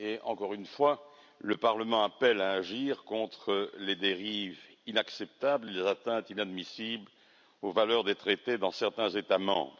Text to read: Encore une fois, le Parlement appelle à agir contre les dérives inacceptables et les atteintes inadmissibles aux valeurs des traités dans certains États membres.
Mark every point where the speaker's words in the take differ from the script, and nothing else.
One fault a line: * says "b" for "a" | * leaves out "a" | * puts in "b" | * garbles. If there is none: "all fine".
all fine